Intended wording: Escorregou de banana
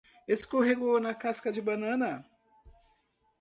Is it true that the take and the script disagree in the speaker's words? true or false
true